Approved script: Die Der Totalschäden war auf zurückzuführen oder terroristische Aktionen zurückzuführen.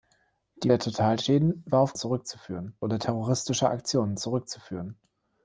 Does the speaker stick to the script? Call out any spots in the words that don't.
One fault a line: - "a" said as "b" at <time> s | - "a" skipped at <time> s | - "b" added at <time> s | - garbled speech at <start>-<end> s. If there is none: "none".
none